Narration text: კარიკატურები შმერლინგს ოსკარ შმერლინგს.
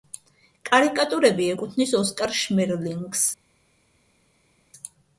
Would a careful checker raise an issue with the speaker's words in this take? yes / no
yes